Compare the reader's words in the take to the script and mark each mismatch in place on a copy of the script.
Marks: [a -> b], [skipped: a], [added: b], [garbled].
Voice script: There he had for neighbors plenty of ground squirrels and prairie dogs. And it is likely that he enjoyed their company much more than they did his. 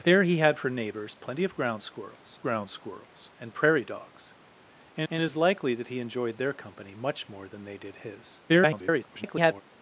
There he had for neighbors plenty of ground squirrels [added: ground squirrels] and prairie dogs. And [added: and] it is likely that he enjoyed their company much more than they did his. [garbled]